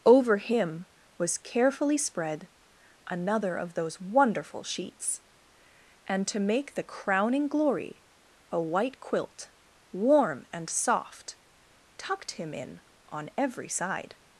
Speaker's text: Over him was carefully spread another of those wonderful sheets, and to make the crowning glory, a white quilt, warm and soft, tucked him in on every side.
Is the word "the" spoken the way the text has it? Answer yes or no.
yes